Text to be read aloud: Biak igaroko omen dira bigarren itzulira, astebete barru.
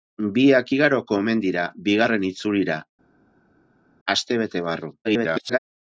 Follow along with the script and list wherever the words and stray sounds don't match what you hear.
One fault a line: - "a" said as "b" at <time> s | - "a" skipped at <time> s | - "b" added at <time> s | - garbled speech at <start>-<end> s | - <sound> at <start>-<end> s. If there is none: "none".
- garbled speech at 5.0-5.6 s